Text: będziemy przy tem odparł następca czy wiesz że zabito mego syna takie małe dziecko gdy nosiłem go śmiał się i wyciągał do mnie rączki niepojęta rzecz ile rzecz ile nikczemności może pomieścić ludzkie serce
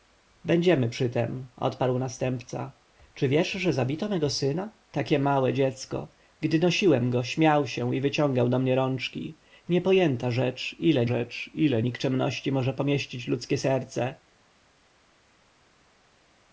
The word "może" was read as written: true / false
true